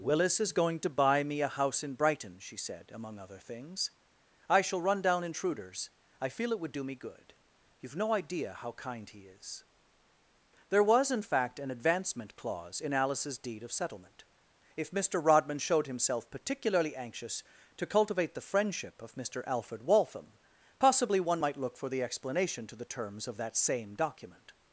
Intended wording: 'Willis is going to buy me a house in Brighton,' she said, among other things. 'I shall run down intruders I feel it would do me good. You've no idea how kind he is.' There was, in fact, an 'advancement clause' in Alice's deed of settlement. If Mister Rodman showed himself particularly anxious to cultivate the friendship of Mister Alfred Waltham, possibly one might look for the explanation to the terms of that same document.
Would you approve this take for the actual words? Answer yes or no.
yes